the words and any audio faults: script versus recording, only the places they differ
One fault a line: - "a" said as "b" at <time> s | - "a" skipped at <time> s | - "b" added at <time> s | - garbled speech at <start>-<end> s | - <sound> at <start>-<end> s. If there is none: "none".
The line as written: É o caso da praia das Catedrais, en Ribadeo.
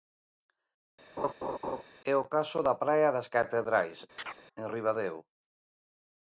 - laugh at 1.2-1.8 s
- chirp at 4.2-4.4 s